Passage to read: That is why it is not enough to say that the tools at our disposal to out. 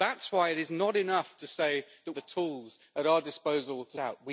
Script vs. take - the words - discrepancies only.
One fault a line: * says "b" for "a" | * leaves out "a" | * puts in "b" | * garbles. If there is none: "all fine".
all fine